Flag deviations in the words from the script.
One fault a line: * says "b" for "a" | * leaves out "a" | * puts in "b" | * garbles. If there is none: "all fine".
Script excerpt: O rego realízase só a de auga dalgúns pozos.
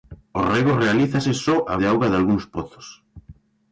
all fine